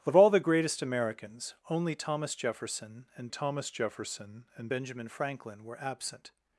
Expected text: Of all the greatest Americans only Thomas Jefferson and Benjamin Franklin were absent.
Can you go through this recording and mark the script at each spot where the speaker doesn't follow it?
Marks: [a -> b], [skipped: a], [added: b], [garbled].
Of all the greatest Americans only Thomas Jefferson and [added: Thomas Jefferson and] Benjamin Franklin were absent.